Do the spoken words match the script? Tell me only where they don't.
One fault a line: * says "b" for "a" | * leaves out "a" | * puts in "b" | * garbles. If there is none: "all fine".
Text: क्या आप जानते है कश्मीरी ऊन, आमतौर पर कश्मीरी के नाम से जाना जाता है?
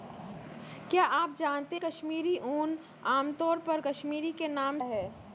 * leaves out "है"
* leaves out "से जाना जाता"